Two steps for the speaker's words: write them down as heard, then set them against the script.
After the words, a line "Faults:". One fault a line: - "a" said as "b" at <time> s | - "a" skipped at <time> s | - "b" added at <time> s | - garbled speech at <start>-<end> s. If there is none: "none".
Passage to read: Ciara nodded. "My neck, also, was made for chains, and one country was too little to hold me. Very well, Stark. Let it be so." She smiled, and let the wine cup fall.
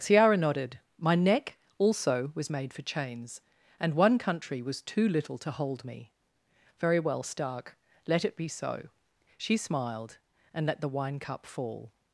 Ciara nodded. "My neck, also, was made for chains, and one country was too little to hold me. Very well, Stark. Let it be so." She smiled, and let the wine cup fall.
Faults:
none